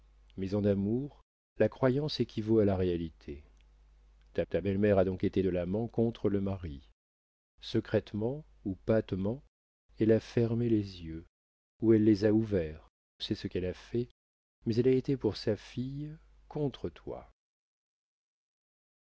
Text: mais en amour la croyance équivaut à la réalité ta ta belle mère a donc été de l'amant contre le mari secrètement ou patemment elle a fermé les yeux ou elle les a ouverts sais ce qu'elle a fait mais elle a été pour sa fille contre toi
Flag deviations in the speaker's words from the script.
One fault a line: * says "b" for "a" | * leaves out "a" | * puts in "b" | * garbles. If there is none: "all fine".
all fine